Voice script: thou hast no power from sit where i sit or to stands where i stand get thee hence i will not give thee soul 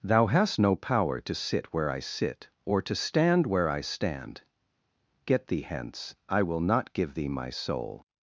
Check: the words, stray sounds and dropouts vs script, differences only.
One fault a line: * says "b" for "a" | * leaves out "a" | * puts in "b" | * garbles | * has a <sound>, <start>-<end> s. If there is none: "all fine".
* says "to" for "from"
* says "stand" for "stands"
* puts in "my"